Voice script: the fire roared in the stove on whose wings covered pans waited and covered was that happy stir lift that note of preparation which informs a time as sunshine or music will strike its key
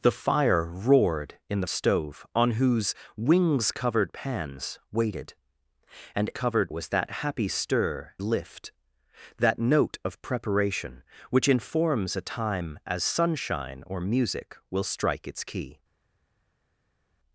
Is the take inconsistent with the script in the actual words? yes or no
no